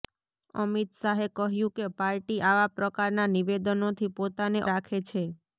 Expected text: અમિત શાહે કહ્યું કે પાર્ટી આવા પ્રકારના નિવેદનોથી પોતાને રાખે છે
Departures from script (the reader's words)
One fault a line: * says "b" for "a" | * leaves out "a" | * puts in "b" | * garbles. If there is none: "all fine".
all fine